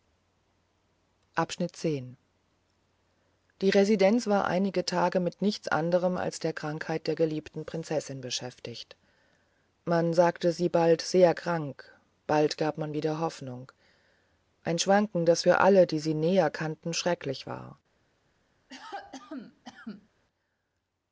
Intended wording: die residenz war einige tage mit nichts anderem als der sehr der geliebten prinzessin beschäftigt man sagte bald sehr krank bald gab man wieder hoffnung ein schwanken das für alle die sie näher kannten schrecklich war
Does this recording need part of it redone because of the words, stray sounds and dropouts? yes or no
yes